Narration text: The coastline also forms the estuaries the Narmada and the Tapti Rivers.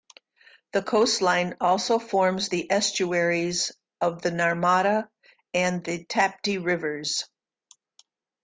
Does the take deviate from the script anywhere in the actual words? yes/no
yes